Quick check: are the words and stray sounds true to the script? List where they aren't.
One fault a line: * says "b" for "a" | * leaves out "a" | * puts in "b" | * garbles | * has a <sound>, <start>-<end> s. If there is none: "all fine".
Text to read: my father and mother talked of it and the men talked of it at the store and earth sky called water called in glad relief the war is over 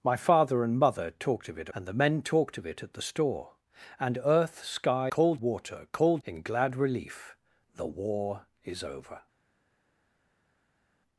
all fine